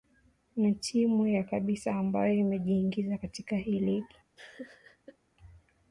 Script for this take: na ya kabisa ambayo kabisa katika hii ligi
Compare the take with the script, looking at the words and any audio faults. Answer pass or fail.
fail